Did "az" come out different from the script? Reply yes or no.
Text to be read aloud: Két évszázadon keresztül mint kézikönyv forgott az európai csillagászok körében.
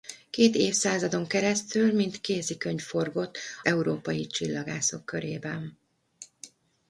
yes